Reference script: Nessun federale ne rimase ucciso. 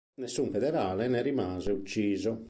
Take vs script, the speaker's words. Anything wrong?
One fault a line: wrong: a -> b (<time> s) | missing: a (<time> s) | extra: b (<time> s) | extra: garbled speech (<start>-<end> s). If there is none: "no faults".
no faults